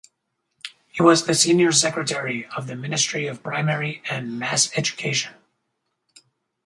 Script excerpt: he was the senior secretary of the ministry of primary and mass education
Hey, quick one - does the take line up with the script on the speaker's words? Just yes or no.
yes